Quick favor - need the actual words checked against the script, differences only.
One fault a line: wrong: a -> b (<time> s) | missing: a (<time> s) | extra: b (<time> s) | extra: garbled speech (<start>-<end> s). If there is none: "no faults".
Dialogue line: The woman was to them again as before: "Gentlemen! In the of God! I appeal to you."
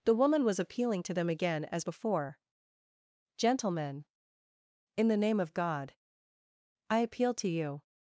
extra: appealing (0.6 s)
extra: name (5.2 s)